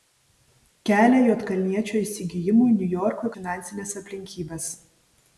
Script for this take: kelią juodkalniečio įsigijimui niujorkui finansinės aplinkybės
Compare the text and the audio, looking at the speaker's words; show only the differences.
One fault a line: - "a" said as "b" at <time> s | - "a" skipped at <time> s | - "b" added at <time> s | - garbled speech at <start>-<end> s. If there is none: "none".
none